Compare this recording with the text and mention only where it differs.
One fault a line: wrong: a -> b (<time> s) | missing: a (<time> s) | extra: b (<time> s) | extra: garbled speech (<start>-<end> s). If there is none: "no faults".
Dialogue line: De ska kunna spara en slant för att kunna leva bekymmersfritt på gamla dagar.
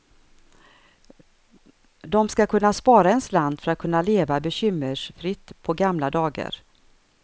no faults